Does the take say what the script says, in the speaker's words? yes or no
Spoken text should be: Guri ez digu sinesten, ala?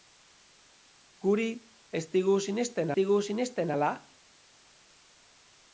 no